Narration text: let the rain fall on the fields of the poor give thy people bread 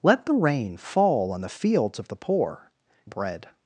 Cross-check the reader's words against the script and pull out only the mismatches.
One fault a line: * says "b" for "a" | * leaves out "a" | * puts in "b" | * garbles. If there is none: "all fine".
* leaves out "give thy people"